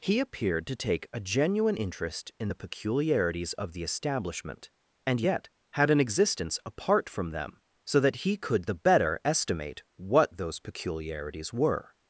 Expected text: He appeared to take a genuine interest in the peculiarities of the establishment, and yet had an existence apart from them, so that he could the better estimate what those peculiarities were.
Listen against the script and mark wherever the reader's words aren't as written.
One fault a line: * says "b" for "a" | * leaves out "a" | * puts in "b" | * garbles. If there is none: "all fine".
all fine